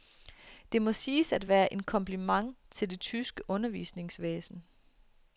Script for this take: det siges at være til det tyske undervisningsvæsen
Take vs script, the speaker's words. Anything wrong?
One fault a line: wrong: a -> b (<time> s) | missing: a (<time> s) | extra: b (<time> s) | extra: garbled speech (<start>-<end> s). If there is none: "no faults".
extra: må (0.8 s)
extra: en kompliment (1.7 s)